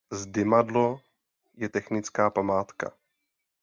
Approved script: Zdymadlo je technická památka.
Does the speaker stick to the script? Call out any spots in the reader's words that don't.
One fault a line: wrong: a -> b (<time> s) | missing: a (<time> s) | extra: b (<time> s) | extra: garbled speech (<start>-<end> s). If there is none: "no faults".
no faults